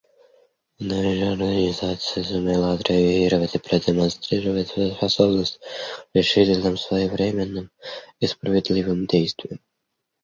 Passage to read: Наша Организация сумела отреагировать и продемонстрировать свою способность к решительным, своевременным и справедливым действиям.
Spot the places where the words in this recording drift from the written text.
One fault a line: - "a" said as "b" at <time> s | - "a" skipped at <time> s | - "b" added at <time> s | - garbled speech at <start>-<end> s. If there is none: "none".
none